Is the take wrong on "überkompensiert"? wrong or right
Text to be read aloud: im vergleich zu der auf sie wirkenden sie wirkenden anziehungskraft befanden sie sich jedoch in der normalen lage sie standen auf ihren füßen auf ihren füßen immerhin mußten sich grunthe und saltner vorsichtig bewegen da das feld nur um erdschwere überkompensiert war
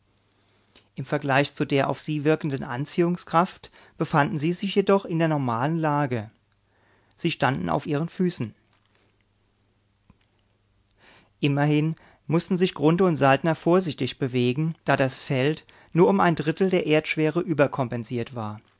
right